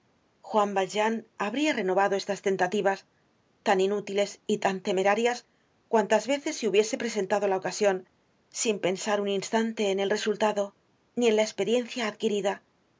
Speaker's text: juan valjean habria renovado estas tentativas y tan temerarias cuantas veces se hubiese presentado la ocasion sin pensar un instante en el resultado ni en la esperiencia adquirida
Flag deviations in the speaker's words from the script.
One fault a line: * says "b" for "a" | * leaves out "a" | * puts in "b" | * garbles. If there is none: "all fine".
* puts in "tan inútiles"